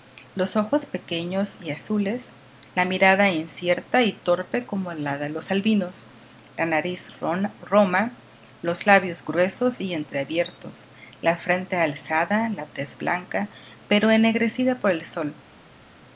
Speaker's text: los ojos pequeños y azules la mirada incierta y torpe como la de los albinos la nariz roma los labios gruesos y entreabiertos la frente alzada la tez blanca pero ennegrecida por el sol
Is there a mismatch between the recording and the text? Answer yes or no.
no